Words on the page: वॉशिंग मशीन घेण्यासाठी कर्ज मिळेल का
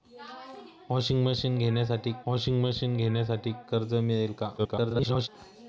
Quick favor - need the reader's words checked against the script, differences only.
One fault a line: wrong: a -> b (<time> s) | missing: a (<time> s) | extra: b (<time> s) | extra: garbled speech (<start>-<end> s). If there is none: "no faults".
extra: वॉशिंग मशीन घेण्यासाठी (2.3 s)
extra: garbled speech (4.6-5.3 s)